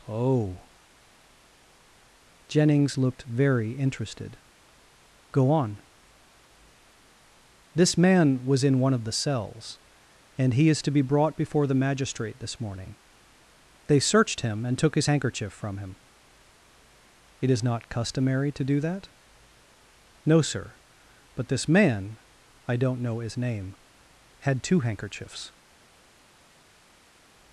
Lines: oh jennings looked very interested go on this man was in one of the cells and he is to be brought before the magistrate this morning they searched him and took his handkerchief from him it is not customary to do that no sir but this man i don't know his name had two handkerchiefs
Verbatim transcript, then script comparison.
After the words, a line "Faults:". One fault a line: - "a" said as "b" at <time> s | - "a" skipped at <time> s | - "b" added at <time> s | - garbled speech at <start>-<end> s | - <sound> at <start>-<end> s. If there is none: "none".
oh jennings looked very interested go on this man was in one of the cells and he is to be brought before the magistrate this morning they searched him and took his handkerchief from him it is not customary to do that no sir but this man i don't know his name had two handkerchiefs
Faults:
none